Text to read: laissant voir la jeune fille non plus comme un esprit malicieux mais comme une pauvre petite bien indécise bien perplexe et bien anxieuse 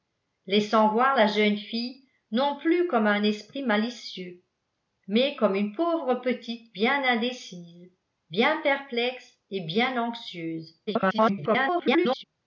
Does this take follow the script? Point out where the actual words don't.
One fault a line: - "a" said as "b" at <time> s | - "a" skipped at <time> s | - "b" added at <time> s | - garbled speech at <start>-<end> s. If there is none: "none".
- garbled speech at 10.9-12.2 s